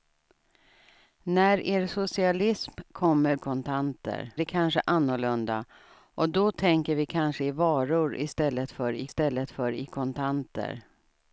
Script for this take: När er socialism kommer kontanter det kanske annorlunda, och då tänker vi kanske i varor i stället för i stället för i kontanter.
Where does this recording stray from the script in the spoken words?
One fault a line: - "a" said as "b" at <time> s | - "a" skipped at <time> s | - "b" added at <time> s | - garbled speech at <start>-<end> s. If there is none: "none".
none